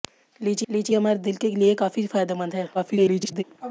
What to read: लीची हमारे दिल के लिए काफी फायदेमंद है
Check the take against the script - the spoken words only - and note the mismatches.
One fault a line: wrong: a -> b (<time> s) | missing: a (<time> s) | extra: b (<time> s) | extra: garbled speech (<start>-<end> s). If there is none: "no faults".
extra: लीची (0.7 s)
extra: garbled speech (2.7-3.4 s)